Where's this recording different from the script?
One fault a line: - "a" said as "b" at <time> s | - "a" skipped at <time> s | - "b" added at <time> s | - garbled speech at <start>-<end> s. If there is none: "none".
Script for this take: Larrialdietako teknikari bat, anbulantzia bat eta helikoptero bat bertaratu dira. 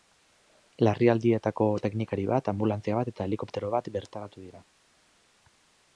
none